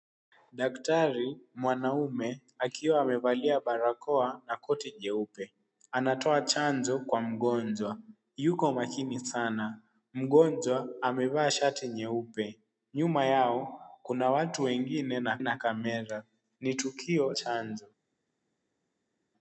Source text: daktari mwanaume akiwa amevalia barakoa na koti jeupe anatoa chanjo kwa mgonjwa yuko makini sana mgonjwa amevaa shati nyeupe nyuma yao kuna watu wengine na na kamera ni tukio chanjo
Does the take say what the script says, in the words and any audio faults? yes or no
yes